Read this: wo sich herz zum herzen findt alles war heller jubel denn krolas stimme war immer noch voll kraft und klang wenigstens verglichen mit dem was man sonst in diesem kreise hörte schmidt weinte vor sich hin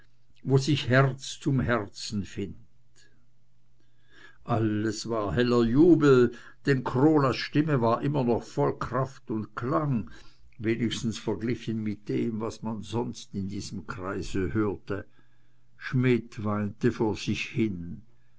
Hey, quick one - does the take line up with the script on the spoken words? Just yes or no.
yes